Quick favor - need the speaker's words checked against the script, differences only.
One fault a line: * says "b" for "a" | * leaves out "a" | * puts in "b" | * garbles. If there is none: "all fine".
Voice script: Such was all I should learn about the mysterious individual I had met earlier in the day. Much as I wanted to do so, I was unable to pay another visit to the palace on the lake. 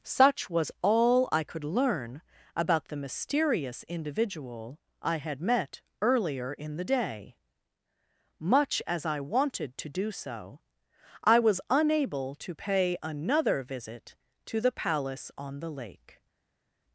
* says "could" for "should"